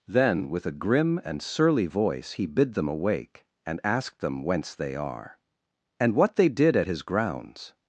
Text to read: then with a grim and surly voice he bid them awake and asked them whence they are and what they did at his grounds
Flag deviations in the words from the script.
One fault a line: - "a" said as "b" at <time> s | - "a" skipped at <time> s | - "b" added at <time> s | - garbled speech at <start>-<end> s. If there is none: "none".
none